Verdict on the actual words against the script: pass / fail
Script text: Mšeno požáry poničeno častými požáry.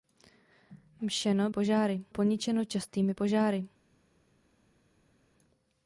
pass